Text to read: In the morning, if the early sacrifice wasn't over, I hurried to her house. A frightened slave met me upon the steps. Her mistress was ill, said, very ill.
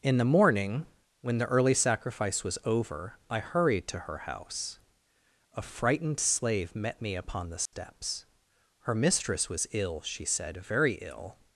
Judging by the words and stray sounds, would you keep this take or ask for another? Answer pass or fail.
fail